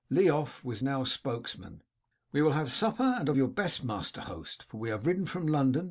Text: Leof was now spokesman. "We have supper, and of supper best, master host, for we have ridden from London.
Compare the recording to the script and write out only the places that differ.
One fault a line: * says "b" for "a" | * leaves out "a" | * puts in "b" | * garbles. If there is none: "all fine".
* puts in "will"
* says "your" for "supper"